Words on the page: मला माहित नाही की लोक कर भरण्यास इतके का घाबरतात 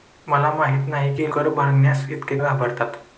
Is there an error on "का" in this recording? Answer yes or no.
yes